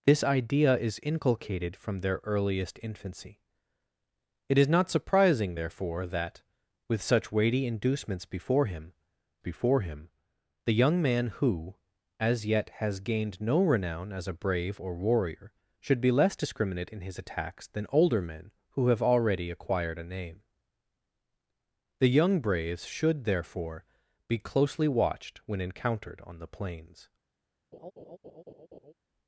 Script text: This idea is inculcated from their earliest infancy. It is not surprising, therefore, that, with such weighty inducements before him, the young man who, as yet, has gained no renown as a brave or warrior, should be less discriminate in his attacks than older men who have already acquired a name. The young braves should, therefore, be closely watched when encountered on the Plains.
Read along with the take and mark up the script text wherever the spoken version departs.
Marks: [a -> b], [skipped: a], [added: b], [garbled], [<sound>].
This idea is inculcated from their earliest infancy. It is not surprising, therefore, that, with such weighty inducements before him, [added: before him] the young man who, as yet, has gained no renown as a brave or warrior, should be less discriminate in his attacks than older men who have already acquired a name. The young braves should, therefore, be closely watched when encountered on the Plains. [laugh]